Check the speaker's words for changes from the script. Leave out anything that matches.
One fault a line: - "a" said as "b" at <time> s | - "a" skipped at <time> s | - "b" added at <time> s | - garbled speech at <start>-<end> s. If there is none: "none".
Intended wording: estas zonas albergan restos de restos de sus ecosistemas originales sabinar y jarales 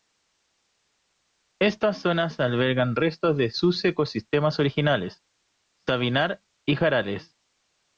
- "restos de" skipped at 3.5 s